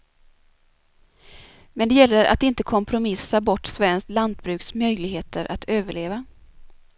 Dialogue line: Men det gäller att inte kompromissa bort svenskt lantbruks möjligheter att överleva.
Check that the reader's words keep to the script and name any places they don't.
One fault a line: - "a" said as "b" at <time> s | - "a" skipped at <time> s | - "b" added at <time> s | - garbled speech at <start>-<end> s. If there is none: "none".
none